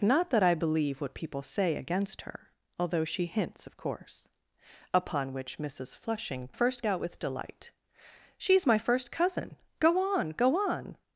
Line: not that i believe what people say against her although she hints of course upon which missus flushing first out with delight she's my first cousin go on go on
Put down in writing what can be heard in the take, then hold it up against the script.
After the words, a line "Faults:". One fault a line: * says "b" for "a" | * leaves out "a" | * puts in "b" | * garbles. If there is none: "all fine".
not that i believe what people say against her although she hints of course upon which missus flushing first out with delight she's my first cousin go on go on
Faults:
all fine